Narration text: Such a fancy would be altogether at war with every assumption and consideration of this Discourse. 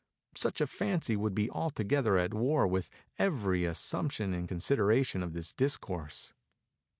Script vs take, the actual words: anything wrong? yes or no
no